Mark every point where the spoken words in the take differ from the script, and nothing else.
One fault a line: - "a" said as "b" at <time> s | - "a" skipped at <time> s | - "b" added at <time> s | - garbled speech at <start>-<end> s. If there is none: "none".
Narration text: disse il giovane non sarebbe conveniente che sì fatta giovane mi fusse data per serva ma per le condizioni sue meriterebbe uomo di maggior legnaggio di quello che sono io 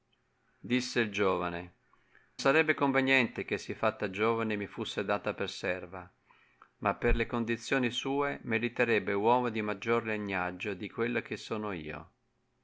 - "non" skipped at 1.7 s